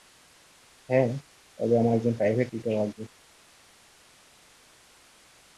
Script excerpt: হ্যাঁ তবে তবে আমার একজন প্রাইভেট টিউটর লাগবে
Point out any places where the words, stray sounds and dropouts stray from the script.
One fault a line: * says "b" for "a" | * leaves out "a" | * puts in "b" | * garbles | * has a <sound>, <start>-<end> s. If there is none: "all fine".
* leaves out "তবে"